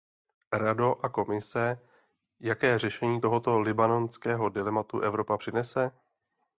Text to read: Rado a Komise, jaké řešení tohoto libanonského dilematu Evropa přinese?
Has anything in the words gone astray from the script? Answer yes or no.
no